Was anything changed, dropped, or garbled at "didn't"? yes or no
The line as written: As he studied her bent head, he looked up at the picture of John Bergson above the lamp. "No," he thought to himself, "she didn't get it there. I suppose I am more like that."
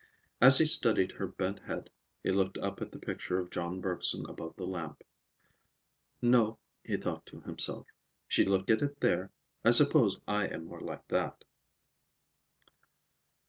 yes